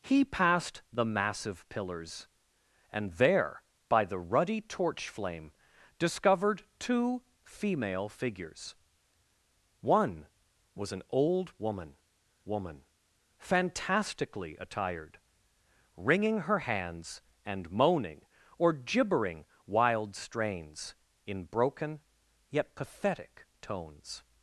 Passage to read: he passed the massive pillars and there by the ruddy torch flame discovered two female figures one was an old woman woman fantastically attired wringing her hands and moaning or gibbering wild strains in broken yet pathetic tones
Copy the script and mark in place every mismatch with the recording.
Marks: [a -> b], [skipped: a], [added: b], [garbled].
he passed the massive pillars and there by the ruddy torch flame discovered two female figures one was an old woman woman fantastically attired wringing her hands and moaning or gibbering wild strains in broken yet pathetic tones